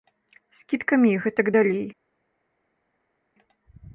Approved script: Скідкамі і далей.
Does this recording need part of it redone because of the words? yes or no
yes